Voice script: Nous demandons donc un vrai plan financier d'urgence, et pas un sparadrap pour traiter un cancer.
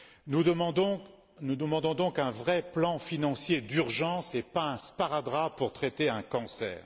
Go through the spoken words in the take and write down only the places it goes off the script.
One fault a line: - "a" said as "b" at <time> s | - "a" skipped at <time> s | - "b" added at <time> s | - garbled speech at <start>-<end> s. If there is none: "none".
none